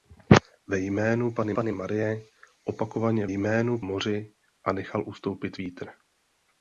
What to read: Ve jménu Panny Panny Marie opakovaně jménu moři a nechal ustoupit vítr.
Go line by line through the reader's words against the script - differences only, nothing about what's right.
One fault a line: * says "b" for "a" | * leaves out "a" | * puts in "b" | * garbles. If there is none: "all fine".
all fine